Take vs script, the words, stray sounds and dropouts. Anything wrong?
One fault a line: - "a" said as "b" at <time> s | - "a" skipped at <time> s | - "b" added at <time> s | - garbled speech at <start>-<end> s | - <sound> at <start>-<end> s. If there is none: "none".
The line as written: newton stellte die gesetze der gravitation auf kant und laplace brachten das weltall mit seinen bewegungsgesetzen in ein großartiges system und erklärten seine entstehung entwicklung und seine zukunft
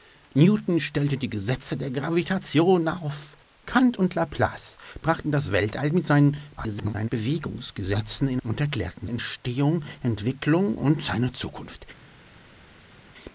- garbled speech at 6.6-7.1 s
- "ein großartiges system" skipped at 8.4 s
- "seine" skipped at 9.1 s